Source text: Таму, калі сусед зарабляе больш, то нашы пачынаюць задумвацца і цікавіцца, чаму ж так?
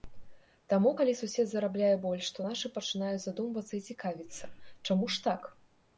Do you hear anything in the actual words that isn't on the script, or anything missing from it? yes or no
no